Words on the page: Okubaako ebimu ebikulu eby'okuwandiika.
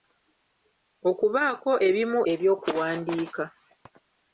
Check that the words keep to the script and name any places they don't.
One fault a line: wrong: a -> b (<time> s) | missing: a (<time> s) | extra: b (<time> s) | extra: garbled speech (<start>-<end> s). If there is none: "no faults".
missing: ebikulu (2.2 s)